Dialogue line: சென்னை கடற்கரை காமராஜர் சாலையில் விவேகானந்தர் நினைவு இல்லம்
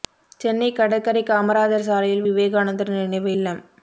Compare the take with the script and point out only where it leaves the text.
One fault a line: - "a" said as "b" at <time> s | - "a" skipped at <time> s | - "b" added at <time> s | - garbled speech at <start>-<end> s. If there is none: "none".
none